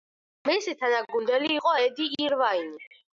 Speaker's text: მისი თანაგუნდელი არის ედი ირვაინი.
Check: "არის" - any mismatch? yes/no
yes